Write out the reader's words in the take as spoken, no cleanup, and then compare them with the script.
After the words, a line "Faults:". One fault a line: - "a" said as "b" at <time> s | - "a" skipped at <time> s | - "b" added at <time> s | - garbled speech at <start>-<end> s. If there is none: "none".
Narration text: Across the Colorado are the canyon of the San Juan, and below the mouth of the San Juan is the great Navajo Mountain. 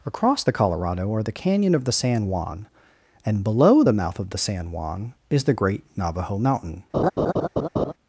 Across the Colorado are the canyon of the San Juan, and below the mouth of the San Juan is the great Navajo Mountain.
Faults:
none